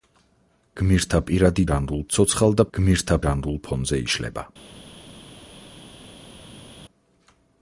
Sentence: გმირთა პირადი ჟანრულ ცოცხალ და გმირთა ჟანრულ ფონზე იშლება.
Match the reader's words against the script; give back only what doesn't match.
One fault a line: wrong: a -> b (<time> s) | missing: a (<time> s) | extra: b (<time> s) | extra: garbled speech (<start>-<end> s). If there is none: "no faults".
no faults